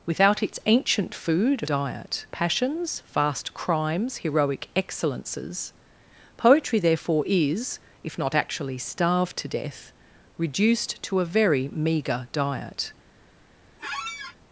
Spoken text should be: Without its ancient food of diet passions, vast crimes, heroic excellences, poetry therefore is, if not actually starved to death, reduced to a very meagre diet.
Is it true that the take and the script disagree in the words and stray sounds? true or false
true